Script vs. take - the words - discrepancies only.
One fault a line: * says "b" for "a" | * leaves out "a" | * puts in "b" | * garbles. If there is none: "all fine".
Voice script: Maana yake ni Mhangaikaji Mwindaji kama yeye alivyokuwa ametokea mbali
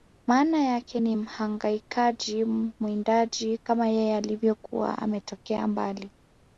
all fine